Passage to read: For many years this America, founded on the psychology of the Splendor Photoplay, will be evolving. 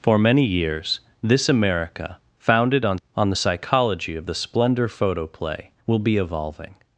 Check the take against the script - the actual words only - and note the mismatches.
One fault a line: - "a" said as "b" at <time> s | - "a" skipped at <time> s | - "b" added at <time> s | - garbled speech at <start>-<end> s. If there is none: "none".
- "on" added at 3.1 s